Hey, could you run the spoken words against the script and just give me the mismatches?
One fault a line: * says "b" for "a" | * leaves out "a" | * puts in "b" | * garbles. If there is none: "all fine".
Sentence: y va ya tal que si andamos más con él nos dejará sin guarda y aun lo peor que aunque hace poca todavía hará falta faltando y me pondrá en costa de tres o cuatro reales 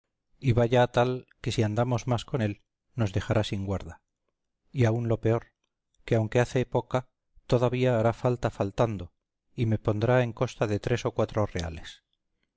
all fine